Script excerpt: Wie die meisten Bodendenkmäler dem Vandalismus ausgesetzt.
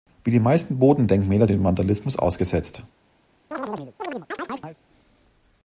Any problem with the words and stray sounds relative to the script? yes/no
yes